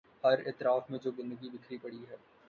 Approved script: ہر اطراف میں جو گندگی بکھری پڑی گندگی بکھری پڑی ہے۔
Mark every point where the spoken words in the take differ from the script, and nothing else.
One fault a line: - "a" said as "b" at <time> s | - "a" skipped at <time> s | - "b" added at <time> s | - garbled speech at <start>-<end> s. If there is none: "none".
- "گندگی بکھری پڑی" skipped at 2.0 s